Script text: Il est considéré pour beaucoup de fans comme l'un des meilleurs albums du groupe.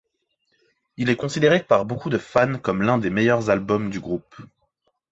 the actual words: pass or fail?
fail